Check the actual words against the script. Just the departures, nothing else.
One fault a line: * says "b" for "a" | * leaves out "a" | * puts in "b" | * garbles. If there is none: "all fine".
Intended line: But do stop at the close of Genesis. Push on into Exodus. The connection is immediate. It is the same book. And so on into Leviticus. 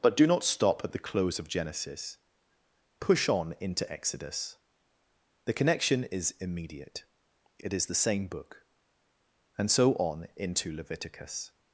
* puts in "not"